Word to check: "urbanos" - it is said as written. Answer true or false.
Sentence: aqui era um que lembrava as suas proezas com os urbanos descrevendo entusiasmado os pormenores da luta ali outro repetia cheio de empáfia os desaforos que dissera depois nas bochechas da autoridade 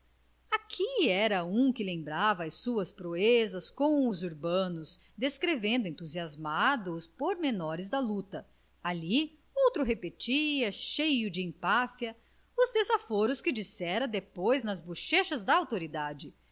true